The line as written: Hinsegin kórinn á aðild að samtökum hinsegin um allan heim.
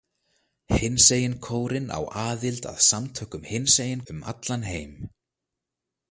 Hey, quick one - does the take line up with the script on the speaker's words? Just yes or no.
yes